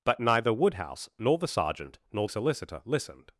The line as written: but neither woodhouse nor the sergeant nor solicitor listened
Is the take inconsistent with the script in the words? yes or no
no